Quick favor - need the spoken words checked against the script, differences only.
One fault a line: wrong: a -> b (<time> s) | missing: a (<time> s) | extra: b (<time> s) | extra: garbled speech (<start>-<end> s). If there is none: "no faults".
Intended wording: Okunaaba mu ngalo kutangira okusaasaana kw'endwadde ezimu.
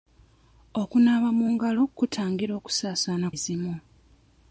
missing: kw'endwadde (3.3 s)